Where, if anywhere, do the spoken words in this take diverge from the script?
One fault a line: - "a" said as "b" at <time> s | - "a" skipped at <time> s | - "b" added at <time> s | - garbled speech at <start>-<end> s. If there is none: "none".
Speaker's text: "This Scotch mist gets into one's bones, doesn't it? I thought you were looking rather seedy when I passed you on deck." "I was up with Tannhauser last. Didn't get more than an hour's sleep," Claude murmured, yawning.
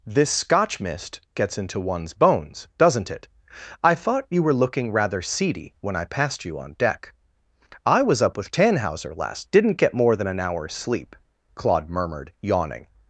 none